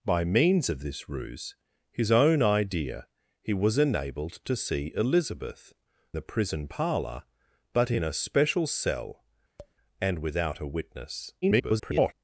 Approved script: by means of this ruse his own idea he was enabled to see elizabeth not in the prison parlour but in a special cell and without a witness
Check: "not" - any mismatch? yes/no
yes